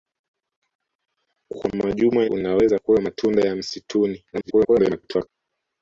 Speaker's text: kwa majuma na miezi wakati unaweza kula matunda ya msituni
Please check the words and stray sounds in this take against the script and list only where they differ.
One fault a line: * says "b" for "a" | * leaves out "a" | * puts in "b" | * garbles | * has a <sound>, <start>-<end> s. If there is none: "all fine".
* leaves out "na miezi wakati"
* garbles